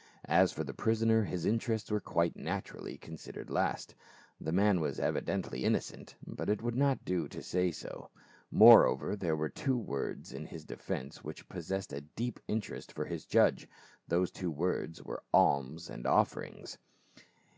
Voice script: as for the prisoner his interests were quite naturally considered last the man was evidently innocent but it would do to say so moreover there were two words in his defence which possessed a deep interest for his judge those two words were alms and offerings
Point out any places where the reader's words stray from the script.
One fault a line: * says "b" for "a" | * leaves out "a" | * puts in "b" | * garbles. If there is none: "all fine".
* puts in "not"